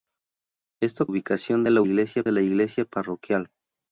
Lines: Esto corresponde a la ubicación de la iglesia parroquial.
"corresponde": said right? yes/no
no